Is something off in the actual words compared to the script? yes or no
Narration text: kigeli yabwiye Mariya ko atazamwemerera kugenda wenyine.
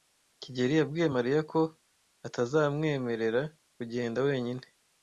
no